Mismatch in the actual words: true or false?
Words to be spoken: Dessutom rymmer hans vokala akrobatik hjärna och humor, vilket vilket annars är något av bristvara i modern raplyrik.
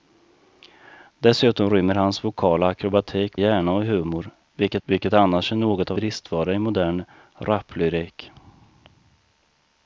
false